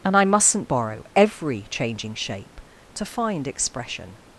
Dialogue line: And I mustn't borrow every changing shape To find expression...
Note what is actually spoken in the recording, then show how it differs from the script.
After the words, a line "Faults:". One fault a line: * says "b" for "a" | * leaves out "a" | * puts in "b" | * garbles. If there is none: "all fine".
And I mustn't borrow every changing shape To find expression...
Faults:
all fine